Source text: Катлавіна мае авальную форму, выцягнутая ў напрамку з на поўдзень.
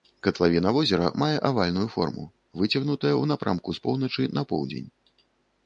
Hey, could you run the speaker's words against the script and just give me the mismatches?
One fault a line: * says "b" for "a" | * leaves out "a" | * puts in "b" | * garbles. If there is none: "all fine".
* puts in "возера"
* puts in "поўначы"